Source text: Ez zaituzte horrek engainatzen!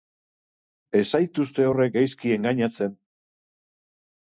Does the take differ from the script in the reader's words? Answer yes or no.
yes